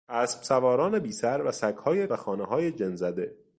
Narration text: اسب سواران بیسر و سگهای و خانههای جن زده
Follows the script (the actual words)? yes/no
yes